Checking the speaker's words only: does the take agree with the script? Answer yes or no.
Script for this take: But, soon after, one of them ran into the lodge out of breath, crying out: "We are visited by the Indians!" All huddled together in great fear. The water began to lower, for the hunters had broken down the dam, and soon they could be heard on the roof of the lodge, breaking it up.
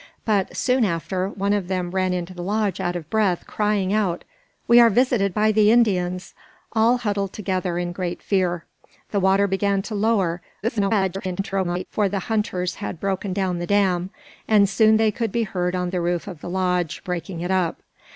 no